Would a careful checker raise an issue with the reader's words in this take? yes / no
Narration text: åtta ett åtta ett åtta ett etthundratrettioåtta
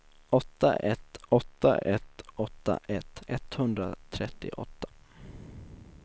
no